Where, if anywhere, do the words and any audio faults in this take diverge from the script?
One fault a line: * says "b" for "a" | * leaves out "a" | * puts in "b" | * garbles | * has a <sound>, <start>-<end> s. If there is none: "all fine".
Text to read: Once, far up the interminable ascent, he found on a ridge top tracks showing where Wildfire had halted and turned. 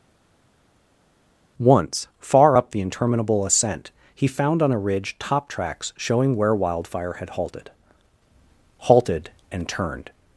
* puts in "halted"